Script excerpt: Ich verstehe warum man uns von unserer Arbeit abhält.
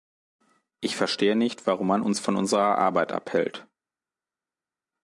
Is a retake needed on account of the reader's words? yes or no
yes